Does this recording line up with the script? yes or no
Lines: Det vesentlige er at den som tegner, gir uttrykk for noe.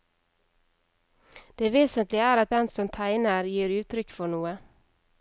yes